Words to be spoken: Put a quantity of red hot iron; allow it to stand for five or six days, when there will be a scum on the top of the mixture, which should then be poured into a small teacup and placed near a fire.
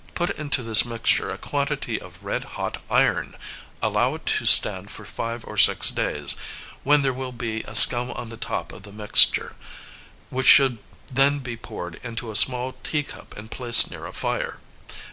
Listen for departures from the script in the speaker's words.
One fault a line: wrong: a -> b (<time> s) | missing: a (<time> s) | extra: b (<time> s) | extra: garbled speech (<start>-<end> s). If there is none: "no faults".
extra: into this mixture (0.3 s)